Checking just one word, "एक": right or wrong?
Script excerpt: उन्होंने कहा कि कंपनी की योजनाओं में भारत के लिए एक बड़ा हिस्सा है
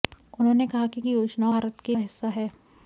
wrong